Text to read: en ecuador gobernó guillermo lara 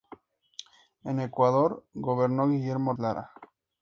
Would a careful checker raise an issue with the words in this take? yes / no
no